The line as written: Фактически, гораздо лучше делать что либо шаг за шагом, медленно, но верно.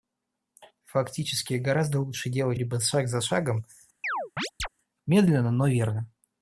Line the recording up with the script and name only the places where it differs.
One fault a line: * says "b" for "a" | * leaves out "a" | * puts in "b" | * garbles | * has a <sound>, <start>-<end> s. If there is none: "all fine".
* leaves out "что"
* has a chirp, 4.0-4.7 s